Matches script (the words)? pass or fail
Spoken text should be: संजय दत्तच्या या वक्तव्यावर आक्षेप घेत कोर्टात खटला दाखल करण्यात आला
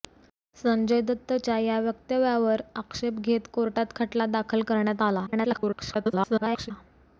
fail